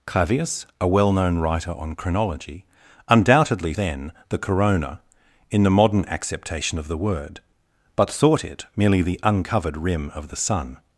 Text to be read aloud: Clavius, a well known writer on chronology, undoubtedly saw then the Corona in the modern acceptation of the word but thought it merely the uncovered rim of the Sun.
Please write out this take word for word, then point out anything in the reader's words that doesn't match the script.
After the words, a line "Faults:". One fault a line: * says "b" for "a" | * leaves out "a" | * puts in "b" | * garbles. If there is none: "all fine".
Clavius, a well known writer on chronology, undoubtedly then the Corona in the modern acceptation of the word but thought it merely the uncovered rim of the Sun.
Faults:
* leaves out "saw"